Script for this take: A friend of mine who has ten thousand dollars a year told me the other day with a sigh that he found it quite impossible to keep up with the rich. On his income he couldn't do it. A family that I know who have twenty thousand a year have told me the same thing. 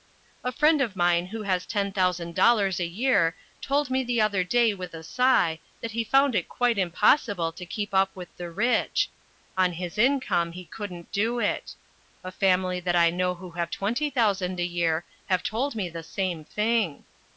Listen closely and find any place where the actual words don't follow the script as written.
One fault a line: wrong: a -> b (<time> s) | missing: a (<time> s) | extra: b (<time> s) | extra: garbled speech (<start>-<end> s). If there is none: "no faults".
no faults